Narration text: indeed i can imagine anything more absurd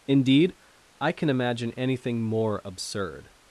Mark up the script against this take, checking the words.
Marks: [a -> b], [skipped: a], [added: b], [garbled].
indeed i can imagine anything more absurd